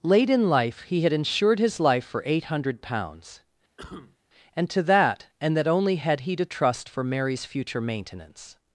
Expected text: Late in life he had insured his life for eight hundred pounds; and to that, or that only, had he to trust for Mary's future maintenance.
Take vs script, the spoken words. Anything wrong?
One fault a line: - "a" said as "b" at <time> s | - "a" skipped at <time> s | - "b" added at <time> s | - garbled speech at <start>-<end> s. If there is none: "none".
- "or" said as "and" at 5.4 s